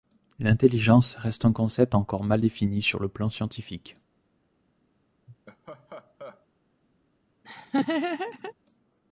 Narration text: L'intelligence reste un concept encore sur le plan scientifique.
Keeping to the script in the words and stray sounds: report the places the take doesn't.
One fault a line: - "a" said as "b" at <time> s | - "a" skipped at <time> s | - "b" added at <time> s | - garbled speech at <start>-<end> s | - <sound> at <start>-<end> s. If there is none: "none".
- "mal défini" added at 2.2 s
- laugh at 5.3-6.5 s
- laugh at 7.4-8.5 s